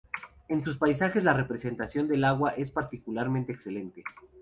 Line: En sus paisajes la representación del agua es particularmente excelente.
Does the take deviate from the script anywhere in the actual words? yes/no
no